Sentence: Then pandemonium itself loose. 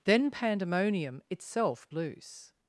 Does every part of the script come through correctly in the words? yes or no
yes